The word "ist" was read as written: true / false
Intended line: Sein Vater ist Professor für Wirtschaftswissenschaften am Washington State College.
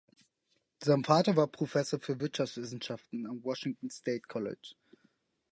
false